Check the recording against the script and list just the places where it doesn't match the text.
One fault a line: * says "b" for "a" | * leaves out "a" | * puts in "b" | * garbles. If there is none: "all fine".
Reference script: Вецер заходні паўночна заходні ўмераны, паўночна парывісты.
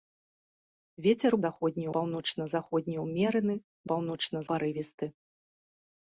all fine